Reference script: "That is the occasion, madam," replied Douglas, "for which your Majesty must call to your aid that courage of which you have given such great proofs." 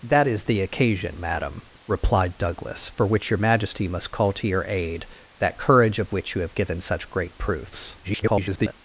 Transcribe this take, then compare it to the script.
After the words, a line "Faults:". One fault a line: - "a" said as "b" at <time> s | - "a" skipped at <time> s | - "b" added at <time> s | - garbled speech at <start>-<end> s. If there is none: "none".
"That is the occasion, madam," replied Douglas, "for which your Majesty must call to your aid that courage of which you have given such great proofs." [garbled]
Faults:
- garbled speech at 8.0-8.7 s